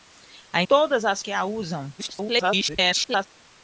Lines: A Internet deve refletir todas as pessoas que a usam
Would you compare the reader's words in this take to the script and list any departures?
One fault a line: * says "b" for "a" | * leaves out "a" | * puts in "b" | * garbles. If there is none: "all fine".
* leaves out "Internet deve refletir"
* leaves out "pessoas"
* garbles